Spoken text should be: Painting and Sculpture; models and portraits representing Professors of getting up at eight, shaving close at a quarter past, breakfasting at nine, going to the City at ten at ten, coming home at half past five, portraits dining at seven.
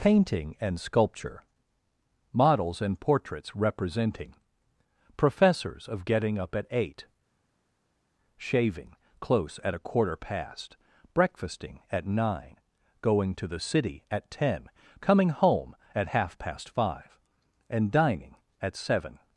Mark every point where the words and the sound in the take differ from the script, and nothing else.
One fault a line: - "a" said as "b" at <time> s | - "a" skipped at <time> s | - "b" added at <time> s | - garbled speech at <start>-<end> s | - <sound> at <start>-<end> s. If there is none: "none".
- "at ten" skipped at 14.7 s
- "portraits" said as "and" at 17.7 s